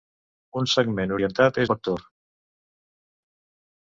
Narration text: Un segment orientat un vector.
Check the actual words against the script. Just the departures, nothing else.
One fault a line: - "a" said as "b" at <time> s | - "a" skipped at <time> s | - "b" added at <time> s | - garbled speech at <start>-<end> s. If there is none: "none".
none